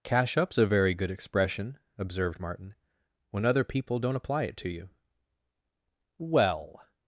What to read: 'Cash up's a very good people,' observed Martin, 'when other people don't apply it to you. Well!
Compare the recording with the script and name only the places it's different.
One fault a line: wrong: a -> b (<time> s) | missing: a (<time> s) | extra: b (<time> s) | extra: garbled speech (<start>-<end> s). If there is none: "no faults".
wrong: people -> expression (1.1 s)